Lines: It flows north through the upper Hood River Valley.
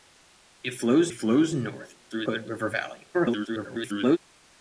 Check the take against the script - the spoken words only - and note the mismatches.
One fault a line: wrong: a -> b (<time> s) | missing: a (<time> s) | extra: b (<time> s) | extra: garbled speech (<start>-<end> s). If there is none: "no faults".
extra: flows (1.1 s)
missing: the upper (2.3 s)
extra: garbled speech (3.1-4.2 s)